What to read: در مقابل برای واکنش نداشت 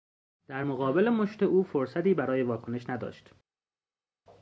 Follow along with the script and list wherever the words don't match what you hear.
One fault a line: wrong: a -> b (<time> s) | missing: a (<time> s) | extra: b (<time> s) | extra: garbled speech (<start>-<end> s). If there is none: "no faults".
extra: مشت او فرصتی (1.1 s)